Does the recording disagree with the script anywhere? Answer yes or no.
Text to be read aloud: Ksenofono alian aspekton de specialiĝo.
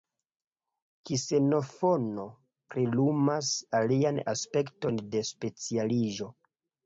yes